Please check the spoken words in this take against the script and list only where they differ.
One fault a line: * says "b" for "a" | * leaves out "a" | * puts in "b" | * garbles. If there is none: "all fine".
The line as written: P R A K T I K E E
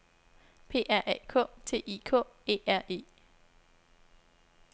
* puts in "R"